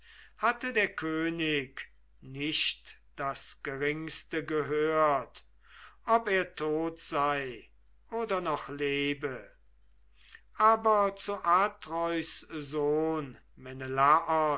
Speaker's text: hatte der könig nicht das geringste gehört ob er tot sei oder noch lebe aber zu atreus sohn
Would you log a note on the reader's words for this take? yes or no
no